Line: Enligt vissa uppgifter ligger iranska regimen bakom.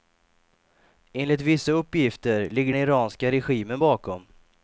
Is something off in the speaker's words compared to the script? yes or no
no